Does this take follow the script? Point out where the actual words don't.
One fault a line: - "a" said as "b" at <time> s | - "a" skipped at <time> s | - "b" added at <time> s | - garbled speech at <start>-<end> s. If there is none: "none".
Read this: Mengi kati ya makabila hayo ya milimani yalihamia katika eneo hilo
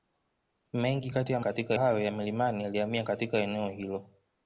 - "makabila" said as "katika" at 1.4 s